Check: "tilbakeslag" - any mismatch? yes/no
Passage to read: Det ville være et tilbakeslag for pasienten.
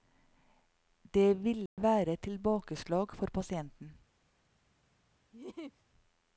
no